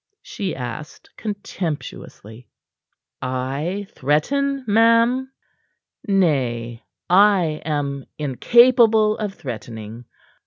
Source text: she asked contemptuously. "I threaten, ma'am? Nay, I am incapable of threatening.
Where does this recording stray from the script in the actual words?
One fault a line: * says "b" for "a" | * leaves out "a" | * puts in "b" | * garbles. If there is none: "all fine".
all fine